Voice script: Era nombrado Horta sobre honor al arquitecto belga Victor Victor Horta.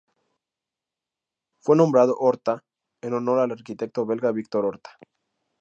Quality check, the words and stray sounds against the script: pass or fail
fail